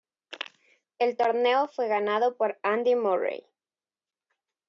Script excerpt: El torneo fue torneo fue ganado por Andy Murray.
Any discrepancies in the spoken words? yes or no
yes